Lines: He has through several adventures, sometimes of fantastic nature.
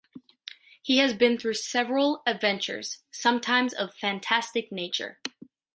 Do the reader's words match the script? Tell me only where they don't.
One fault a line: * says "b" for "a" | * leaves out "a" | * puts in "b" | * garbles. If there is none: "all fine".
* puts in "been"